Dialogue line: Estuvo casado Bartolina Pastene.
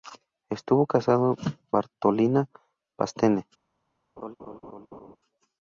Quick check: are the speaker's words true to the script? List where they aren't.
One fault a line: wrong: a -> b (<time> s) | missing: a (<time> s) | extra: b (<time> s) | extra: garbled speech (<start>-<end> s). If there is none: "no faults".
no faults